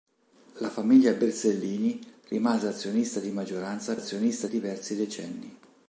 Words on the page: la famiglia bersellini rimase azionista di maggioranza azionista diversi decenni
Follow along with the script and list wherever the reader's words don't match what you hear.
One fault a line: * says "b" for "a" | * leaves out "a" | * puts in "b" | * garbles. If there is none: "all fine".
all fine